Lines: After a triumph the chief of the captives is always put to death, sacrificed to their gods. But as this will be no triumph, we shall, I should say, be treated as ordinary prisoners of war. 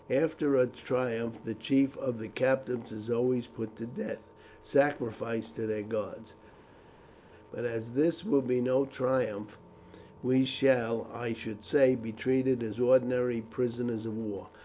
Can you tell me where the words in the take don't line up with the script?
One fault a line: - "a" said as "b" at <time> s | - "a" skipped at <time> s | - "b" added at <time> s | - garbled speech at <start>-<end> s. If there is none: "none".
none